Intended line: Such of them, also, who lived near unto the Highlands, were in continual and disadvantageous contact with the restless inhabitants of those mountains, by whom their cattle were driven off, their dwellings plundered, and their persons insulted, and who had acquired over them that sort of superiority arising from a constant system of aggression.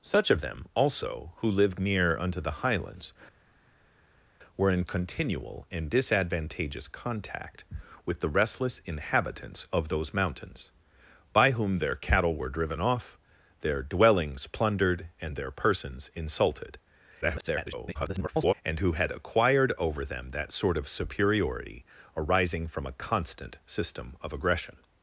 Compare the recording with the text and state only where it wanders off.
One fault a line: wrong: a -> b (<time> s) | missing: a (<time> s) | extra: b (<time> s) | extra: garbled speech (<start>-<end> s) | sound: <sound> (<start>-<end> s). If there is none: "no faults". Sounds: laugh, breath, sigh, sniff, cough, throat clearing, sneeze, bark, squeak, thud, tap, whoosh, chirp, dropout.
extra: garbled speech (17.2-18.5 s)